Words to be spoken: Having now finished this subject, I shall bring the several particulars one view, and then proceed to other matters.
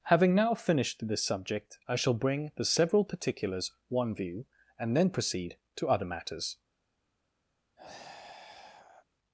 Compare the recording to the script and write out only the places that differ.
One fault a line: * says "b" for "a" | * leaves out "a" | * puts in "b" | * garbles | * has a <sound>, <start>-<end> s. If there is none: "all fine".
* has a sigh, 7.8-9.1 s